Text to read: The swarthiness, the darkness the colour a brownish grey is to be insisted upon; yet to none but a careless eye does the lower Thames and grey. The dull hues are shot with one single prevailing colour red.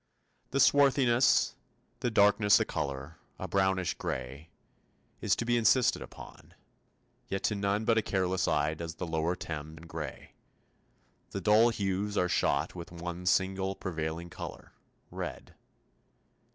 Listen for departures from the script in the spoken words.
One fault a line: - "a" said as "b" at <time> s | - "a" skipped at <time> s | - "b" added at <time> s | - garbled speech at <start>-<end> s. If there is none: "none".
none